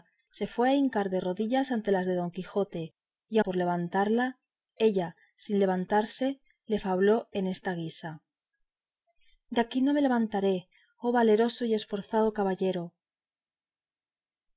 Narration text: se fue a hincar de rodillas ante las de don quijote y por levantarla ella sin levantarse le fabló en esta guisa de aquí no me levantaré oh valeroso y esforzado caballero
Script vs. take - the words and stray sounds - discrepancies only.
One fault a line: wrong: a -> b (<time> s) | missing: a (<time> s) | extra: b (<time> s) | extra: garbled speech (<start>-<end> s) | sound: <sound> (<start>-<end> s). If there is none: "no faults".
no faults